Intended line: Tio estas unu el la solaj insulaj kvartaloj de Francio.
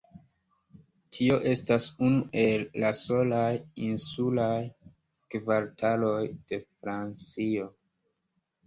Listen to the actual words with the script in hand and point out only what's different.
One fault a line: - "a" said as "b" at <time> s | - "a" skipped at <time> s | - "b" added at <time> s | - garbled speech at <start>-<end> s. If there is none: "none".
none